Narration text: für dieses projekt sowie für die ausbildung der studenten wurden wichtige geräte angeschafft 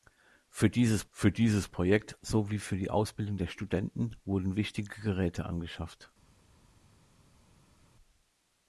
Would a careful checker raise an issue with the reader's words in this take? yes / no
yes